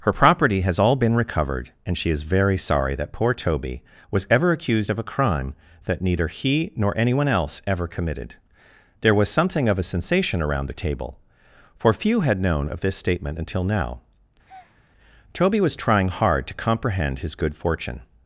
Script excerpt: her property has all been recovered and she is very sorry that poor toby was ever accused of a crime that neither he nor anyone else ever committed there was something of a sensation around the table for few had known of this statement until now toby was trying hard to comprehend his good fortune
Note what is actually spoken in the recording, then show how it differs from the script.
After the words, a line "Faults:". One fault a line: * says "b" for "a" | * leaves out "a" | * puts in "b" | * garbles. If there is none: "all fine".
her property has all been recovered and she is very sorry that poor toby was ever accused of a crime that neither he nor anyone else ever committed there was something of a sensation around the table for few had known of this statement until now toby was trying hard to comprehend his good fortune
Faults:
all fine